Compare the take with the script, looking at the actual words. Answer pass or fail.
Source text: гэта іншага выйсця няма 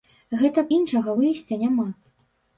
pass